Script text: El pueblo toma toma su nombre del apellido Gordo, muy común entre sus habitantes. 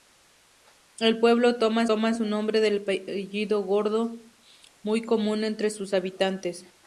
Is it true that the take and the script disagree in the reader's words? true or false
false